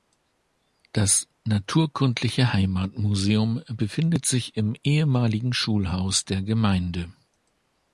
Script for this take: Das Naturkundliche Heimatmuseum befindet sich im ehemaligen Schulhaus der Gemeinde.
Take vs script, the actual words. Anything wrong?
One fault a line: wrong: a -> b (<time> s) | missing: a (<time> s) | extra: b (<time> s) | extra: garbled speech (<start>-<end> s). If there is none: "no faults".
no faults